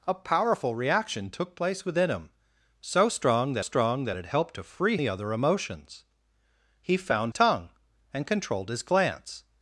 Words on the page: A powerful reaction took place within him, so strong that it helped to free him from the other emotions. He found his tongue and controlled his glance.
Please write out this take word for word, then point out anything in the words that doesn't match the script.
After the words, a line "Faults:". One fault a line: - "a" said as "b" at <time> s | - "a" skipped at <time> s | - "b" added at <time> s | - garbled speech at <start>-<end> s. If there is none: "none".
A powerful reaction took place within him, so strong that strong that it helped to free the other emotions. He found tongue and controlled his glance.
Faults:
- "strong that" added at 3.6 s
- "him from" skipped at 5.0 s
- "his" skipped at 7.3 s